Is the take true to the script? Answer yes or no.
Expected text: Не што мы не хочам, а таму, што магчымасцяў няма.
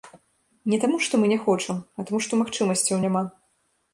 no